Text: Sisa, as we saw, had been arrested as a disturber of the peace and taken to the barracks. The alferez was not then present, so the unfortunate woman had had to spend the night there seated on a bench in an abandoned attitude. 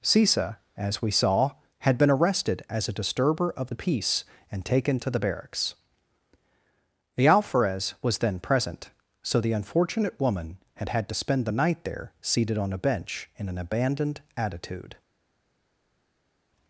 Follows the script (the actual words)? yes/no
no